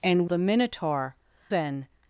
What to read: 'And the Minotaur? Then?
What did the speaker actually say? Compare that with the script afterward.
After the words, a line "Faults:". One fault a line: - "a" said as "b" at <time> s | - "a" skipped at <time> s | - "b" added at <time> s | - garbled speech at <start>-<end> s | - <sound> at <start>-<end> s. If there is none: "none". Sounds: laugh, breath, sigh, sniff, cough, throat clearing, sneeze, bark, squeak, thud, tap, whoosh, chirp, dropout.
'And the Minotaur? Then?
Faults:
none